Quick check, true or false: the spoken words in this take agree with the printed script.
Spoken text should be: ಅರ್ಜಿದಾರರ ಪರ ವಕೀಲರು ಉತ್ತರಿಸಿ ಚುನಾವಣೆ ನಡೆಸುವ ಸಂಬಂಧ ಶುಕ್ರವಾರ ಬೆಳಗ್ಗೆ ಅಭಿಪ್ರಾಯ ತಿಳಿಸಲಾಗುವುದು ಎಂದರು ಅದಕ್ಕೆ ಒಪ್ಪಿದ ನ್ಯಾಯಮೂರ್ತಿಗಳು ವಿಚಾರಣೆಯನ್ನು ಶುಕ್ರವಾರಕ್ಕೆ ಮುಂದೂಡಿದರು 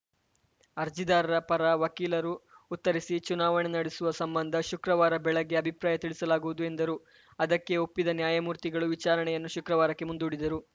true